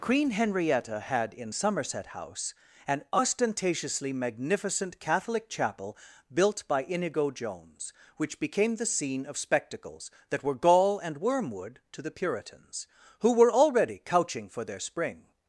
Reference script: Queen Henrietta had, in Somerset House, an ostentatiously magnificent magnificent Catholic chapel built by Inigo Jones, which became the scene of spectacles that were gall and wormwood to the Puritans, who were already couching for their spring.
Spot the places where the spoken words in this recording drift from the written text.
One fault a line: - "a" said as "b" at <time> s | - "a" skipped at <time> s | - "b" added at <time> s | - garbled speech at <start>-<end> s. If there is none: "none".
- "magnificent" skipped at 5.0 s